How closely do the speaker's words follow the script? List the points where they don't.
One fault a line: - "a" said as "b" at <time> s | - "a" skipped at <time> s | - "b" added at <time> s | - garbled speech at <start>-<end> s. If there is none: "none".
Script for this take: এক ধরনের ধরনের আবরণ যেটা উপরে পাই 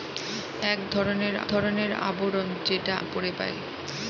none